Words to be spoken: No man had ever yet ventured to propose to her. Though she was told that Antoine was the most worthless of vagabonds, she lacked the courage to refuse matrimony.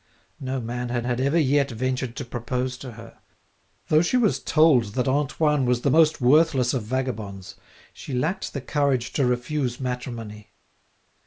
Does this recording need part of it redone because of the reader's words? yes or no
yes